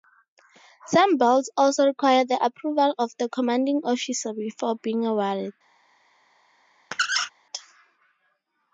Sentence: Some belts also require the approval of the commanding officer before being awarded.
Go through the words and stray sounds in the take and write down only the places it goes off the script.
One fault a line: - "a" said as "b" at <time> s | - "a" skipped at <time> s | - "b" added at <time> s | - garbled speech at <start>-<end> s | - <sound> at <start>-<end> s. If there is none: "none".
- squeak at 6.9-7.3 s